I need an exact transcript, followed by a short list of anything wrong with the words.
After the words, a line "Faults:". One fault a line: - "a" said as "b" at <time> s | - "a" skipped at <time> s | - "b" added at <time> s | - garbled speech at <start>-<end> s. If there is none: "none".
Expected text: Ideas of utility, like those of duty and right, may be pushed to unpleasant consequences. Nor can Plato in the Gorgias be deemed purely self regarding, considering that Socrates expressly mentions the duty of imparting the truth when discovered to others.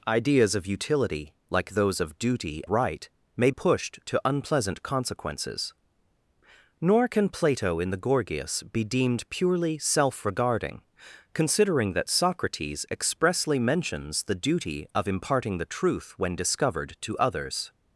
Ideas of utility, like those of duty right, may pushed to unpleasant consequences. Nor can Plato in the Gorgias be deemed purely self regarding, considering that Socrates expressly mentions the duty of imparting the truth when discovered to others.
Faults:
- "and" skipped at 2.6 s
- "be" skipped at 3.5 s